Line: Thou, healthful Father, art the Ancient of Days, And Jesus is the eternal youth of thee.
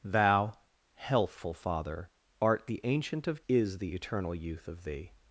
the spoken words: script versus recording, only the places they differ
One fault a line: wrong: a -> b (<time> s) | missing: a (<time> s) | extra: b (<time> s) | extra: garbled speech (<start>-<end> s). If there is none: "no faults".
missing: Days And Jesus (3.4 s)